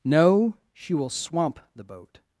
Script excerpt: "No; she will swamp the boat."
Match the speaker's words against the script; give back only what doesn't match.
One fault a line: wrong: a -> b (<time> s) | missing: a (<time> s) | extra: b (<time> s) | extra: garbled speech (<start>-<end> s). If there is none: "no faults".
no faults